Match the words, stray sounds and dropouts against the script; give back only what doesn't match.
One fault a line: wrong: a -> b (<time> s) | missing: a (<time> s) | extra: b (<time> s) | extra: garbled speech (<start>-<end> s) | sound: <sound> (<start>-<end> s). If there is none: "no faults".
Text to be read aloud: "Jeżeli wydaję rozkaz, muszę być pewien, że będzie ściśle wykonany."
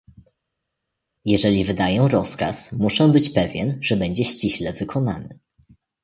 no faults